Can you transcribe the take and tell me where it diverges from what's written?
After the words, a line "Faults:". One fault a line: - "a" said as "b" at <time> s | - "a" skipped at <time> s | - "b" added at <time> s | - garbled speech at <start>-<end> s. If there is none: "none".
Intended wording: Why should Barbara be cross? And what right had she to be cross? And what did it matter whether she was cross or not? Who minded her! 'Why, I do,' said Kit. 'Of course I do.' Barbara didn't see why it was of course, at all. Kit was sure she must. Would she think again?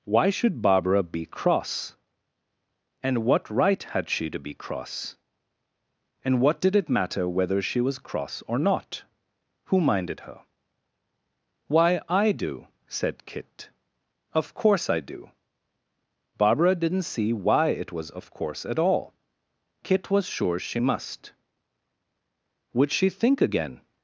Why should Barbara be cross? And what right had she to be cross? And what did it matter whether she was cross or not? Who minded her! 'Why, I do,' said Kit. 'Of course I do.' Barbara didn't see why it was of course, at all. Kit was sure she must. Would she think again?
Faults:
none